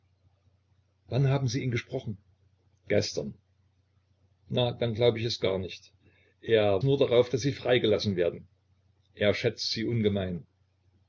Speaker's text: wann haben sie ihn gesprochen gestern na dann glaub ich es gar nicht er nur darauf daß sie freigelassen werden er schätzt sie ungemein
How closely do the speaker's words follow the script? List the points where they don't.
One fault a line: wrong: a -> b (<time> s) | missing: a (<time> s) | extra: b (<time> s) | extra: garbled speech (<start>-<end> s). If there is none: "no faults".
no faults